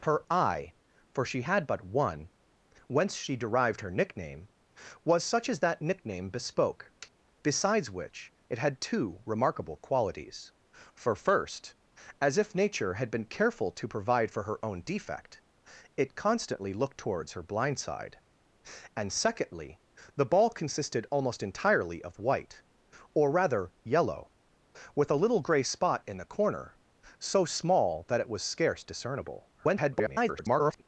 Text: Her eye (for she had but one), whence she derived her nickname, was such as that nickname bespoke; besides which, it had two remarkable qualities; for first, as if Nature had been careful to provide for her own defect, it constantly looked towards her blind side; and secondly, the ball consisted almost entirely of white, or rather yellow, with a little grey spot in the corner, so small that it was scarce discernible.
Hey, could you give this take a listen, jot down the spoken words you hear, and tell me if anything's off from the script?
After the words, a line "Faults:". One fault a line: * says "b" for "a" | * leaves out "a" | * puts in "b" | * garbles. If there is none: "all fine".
Her eye (for she had but one), whence she derived her nickname, was such as that nickname bespoke; besides which, it had two remarkable qualities; for first, as if Nature had been careful to provide for her own defect, it constantly looked towards her blind side; and secondly, the ball consisted almost entirely of white, or rather yellow, with a little grey spot in the corner, so small that it was scarce discernible. [garbled]
Faults:
* garbles